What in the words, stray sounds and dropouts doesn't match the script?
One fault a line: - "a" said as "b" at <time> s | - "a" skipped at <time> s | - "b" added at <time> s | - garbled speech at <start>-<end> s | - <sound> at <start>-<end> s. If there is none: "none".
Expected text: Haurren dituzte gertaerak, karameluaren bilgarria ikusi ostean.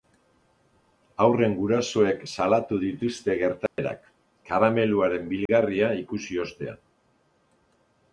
- "gurasoek salatu" added at 1.6 s
- dropout at 3.7-3.8 s
- dropout at 5.5-5.5 s